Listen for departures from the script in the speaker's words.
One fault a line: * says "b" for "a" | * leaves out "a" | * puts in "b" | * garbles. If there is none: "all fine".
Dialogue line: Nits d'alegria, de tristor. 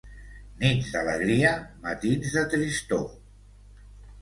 * puts in "matins"